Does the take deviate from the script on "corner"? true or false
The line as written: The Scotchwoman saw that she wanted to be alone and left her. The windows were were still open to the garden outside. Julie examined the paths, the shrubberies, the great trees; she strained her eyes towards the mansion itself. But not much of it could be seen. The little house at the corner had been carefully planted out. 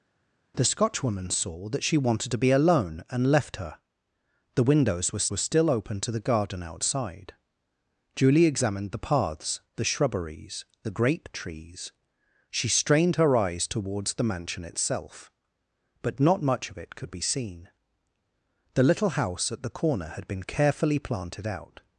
false